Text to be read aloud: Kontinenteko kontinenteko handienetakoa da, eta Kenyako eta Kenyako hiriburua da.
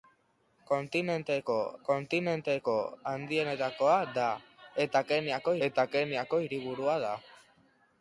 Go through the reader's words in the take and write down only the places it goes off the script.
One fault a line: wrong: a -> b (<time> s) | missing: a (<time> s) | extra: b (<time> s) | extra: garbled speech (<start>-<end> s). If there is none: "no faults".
no faults